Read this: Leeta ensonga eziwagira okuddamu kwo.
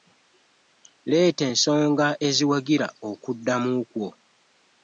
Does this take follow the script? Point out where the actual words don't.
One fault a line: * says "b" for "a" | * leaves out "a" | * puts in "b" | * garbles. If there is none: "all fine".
all fine